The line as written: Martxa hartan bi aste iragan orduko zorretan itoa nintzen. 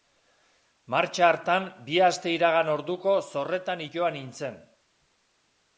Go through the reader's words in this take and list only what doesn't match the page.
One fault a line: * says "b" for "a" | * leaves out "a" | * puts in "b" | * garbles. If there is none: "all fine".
all fine